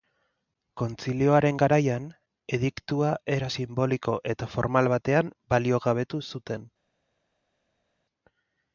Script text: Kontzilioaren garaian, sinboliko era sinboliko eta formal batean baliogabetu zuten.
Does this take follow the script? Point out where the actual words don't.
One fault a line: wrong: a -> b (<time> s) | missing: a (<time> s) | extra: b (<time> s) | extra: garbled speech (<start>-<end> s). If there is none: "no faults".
wrong: sinboliko -> ediktua (2.6 s)